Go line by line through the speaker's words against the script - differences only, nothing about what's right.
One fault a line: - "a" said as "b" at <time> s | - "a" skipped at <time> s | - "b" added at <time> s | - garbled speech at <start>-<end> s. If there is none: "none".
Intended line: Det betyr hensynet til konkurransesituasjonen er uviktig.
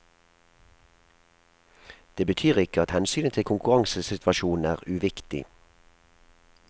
- "ikke at" added at 2.6 s